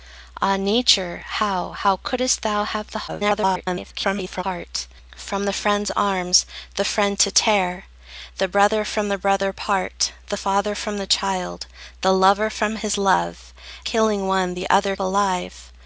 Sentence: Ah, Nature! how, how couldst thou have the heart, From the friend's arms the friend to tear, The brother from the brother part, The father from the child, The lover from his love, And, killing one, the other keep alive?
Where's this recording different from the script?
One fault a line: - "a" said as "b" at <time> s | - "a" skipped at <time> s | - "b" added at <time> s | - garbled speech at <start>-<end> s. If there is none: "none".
- garbled speech at 3.1-4.4 s
- "And" skipped at 13.5 s
- "keep" skipped at 15.0 s